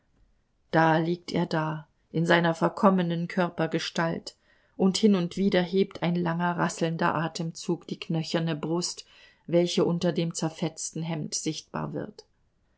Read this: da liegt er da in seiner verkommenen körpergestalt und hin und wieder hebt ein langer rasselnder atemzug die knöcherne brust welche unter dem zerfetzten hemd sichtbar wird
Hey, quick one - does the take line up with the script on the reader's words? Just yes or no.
yes